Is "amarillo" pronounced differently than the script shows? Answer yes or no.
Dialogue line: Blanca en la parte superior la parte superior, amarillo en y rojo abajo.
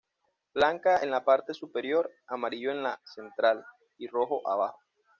yes